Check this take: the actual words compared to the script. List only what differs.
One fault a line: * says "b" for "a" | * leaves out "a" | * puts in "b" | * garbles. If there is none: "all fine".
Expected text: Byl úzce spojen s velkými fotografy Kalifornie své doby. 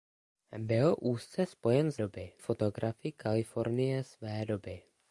* says "doby" for "velkými"